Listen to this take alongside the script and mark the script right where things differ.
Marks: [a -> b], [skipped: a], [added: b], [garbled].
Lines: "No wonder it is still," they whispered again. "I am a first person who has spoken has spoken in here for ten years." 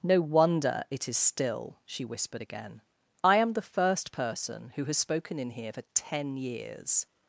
"No wonder it is still," [they -> she] whispered again. "I am [a -> the] first person who has spoken [skipped: has spoken] in here for ten years."